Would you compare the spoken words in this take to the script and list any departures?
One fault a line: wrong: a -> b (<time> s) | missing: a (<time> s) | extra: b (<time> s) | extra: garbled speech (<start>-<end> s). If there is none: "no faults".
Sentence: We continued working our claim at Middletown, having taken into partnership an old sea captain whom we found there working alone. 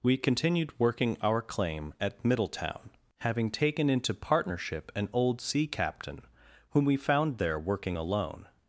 no faults